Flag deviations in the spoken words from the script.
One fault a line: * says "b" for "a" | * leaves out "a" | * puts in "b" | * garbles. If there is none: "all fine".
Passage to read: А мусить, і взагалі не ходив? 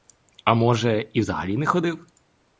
* says "може" for "мусить"